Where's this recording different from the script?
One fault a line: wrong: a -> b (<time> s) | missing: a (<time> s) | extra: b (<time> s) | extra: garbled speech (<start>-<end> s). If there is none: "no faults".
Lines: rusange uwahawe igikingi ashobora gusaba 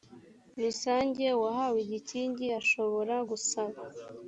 no faults